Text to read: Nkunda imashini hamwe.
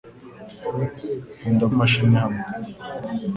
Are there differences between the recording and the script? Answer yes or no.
no